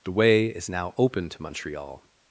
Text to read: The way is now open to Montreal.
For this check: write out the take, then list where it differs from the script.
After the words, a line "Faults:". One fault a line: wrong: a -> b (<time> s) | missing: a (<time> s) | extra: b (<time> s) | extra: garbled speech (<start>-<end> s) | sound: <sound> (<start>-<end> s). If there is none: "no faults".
The way is now open to Montreal.
Faults:
no faults